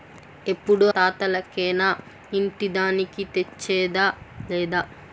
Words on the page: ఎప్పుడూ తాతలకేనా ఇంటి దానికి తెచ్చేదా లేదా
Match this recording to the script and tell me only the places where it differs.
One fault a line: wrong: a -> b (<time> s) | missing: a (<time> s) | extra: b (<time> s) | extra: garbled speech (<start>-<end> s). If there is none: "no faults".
no faults